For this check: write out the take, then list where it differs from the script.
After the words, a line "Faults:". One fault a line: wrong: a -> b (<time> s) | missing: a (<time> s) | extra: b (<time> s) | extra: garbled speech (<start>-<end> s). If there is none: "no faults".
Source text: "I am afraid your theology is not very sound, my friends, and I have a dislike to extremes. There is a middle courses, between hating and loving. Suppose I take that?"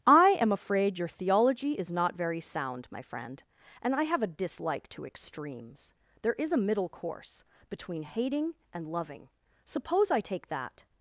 "I am afraid your theology is not very sound, my friend, and I have a dislike to extremes. There is a middle course, between hating and loving. Suppose I take that?"
Faults:
wrong: friends -> friend (3.0 s)
wrong: courses -> course (6.9 s)